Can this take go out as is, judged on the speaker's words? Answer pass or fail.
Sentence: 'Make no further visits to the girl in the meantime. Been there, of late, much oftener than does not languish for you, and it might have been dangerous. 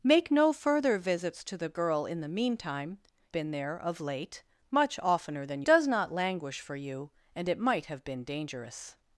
pass